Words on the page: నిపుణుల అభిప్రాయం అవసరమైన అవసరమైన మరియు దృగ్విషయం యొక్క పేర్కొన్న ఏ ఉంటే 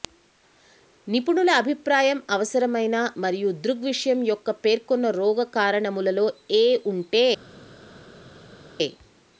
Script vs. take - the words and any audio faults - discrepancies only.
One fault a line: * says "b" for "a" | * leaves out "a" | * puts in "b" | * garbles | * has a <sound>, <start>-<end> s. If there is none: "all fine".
* leaves out "అవసరమైన"
* puts in "రోగ కారణములలో"